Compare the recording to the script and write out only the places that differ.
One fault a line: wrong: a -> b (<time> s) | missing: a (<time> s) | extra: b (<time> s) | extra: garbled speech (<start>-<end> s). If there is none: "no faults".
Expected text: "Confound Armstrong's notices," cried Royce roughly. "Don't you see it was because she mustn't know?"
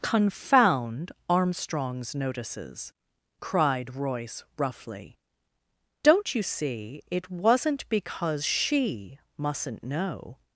wrong: was -> wasn't (7.3 s)